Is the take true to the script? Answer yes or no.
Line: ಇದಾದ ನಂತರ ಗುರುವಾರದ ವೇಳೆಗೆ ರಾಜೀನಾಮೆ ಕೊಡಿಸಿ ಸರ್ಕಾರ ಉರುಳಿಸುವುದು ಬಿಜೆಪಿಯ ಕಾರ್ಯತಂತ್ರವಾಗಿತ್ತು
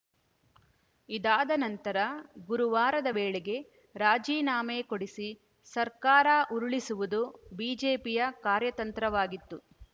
yes